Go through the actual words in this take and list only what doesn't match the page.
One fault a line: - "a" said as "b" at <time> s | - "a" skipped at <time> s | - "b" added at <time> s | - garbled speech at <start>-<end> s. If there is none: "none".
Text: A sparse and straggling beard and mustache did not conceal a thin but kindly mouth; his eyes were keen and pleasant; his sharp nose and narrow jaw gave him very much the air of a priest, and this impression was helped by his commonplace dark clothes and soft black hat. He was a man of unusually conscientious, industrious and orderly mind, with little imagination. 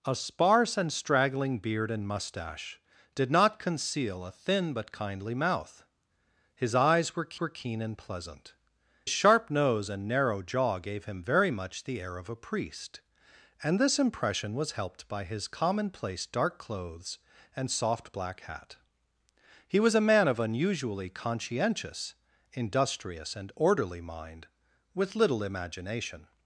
- "were" added at 7.4 s
- "his" skipped at 8.5 s